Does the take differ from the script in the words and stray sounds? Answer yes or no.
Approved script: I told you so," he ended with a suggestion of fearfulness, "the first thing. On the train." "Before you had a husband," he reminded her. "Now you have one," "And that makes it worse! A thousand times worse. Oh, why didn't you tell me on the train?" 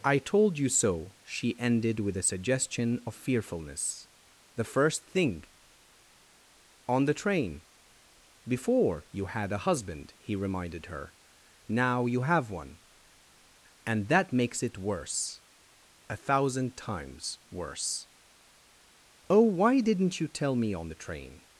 yes